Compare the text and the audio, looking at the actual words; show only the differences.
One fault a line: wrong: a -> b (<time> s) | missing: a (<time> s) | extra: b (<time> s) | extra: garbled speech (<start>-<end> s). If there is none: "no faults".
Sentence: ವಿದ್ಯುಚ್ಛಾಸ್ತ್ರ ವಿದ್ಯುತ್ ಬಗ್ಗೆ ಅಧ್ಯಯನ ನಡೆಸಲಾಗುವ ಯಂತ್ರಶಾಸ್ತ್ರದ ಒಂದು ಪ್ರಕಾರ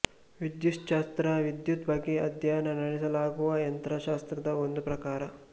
no faults